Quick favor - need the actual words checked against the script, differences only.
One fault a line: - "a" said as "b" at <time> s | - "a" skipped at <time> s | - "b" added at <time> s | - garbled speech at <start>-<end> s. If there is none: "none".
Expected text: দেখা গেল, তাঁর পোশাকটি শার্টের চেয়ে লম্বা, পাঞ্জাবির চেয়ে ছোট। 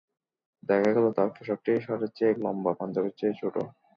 none